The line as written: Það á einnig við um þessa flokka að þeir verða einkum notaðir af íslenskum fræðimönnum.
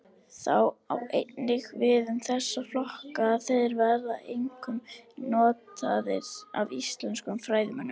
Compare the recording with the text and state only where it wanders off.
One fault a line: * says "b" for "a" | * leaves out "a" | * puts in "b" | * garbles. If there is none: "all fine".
all fine